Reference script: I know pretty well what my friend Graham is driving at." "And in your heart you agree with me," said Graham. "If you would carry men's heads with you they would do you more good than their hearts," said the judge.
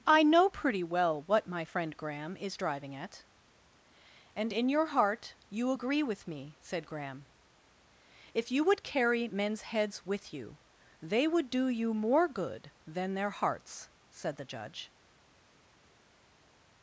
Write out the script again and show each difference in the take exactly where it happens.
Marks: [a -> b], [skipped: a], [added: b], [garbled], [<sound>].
I know pretty well what my friend Graham is driving at." "And in your heart you agree with me," said Graham. "If you would carry men's heads with you they would do you more good than their hearts," said the judge.